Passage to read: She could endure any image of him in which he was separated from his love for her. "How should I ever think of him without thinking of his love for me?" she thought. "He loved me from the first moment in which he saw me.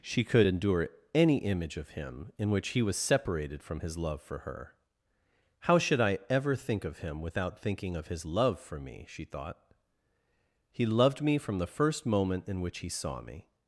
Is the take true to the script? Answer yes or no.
yes